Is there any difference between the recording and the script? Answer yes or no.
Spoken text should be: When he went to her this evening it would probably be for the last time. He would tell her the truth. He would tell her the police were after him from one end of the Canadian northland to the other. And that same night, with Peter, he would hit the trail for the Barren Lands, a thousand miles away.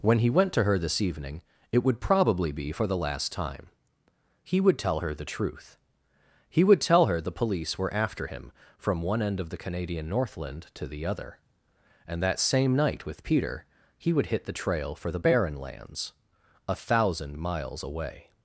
no